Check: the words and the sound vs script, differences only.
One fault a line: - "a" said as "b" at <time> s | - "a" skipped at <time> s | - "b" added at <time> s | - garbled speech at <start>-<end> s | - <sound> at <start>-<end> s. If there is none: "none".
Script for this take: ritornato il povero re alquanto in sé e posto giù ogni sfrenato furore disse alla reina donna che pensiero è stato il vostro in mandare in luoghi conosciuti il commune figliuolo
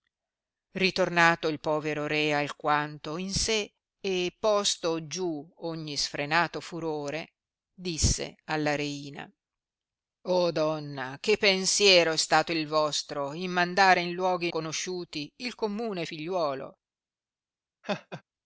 - laugh at 17.8-18.2 s